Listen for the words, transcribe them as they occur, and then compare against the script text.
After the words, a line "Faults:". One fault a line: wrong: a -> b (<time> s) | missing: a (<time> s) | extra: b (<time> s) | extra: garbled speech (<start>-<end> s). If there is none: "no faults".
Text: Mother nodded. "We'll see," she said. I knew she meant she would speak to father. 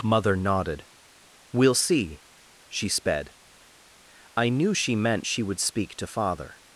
Mother nodded. "We'll see," she sped. I knew she meant she would speak to father.
Faults:
wrong: said -> sped (2.9 s)